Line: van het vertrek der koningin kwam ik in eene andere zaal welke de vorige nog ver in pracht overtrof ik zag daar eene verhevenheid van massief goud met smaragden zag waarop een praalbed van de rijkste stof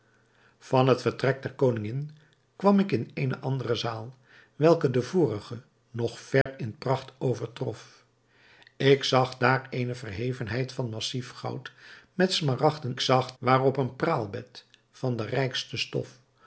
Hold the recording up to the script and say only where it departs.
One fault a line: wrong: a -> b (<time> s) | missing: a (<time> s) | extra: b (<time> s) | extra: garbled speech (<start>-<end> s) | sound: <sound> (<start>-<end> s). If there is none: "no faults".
sound: dropout (6.4-6.5 s)